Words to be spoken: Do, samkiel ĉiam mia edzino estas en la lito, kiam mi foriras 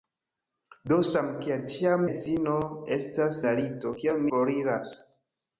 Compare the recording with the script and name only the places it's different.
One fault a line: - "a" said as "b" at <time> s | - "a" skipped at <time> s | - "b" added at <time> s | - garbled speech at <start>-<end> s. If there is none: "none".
- "mia" skipped at 2.1 s
- "en" skipped at 3.4 s
- "mi" skipped at 4.3 s